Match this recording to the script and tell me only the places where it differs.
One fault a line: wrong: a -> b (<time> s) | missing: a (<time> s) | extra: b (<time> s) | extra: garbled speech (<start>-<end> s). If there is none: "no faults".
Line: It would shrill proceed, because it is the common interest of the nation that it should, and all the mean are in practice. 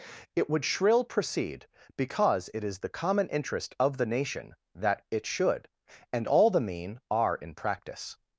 no faults